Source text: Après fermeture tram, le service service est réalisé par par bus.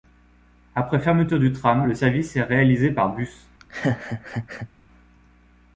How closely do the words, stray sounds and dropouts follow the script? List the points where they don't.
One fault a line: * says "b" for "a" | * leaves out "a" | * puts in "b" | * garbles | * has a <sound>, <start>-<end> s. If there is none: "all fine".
* puts in "du"
* leaves out "service"
* leaves out "par"
* has a laugh, 3.6-4.7 s